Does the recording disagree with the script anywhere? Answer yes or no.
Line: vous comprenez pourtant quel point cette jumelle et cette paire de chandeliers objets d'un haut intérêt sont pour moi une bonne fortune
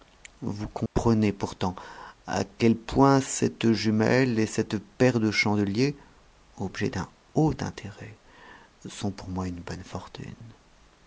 yes